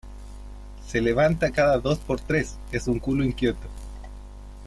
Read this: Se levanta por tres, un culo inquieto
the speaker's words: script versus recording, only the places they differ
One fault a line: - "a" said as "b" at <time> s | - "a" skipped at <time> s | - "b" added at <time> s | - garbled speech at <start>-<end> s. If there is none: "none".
- "cada dos" added at 1.5 s
- "es" added at 2.7 s